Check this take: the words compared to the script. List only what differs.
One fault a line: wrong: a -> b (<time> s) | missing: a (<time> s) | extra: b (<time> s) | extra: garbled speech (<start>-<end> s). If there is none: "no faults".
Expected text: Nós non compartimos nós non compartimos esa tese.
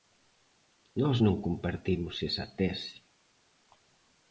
missing: nós non compartimos (2.2 s)